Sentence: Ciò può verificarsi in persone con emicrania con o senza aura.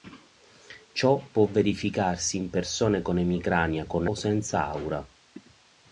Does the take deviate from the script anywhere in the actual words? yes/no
no